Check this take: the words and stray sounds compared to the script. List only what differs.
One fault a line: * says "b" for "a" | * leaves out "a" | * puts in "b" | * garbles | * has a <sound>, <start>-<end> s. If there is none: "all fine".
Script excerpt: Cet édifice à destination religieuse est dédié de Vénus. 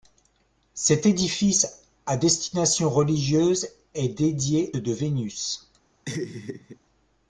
* has a laugh, 6.1-6.8 s